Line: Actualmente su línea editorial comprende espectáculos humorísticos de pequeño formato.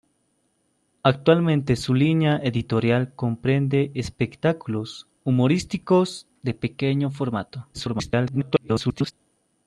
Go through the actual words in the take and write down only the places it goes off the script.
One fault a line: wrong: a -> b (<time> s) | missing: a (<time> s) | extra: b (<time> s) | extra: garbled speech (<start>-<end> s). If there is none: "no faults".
extra: garbled speech (7.7-9.1 s)